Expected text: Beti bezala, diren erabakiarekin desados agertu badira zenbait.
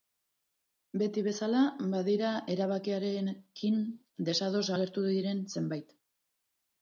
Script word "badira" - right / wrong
wrong